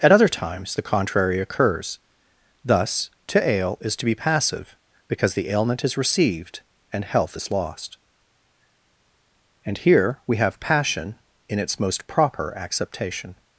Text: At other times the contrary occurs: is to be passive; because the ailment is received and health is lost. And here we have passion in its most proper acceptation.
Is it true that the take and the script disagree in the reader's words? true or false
true